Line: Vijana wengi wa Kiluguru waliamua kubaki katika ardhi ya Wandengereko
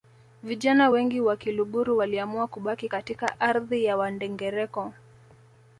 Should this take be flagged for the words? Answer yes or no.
no